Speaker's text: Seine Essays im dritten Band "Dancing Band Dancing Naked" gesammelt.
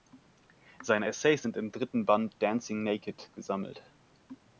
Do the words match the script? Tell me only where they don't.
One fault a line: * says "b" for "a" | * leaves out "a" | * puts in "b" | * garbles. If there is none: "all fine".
* puts in "sind"
* leaves out "Band Dancing"